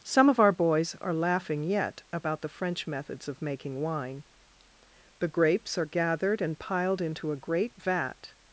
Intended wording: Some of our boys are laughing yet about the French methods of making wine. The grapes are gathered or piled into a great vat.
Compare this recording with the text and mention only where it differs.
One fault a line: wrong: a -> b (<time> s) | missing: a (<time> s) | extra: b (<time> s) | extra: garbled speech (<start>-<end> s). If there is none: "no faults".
wrong: or -> and (6.4 s)